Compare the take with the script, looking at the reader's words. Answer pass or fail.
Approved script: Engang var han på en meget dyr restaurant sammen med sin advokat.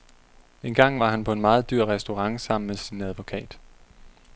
pass